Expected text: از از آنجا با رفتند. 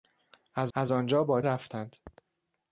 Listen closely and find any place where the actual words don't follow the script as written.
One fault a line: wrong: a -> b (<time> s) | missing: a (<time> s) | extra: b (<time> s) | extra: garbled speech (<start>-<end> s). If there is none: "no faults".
no faults